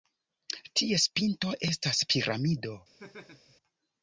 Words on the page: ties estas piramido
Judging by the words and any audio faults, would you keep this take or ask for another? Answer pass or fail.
fail